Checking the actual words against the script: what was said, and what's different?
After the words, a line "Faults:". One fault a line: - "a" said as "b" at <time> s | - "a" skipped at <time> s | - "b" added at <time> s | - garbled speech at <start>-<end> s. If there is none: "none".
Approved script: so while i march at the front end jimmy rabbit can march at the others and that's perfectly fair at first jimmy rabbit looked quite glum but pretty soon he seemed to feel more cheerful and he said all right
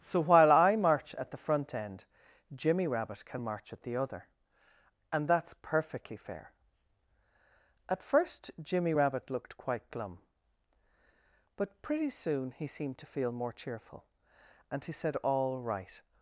so while i march at the front end jimmy rabbit can march at the other and that's perfectly fair at first jimmy rabbit looked quite glum but pretty soon he seemed to feel more cheerful and he said all right
Faults:
- "others" said as "other" at 4.0 s